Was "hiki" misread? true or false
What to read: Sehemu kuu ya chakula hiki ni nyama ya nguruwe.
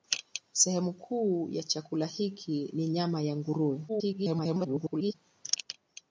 false